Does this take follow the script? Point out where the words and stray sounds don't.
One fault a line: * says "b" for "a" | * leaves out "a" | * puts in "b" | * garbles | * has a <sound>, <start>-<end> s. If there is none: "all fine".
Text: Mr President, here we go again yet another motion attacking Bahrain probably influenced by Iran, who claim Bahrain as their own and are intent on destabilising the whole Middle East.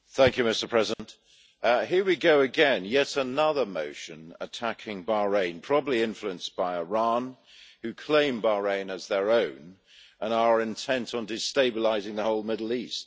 * has a dropout, 0.9-1.0 s